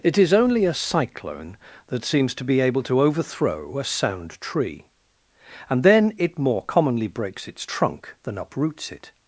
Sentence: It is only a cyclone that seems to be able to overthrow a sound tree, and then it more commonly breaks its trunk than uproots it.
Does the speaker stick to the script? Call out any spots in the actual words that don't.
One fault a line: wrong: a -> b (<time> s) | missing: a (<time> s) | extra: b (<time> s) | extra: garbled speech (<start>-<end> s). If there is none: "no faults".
no faults